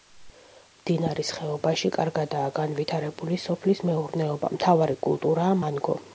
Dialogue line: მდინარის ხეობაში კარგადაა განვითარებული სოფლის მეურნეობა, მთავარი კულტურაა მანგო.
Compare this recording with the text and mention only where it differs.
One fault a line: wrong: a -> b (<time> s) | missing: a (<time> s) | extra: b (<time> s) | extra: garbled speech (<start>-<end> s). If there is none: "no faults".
no faults